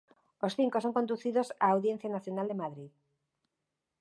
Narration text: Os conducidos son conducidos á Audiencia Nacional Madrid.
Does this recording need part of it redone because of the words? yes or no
yes